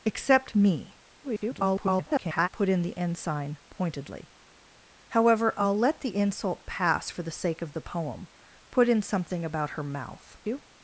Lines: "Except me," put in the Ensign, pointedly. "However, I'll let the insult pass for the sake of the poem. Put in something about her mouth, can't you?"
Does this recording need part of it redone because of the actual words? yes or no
yes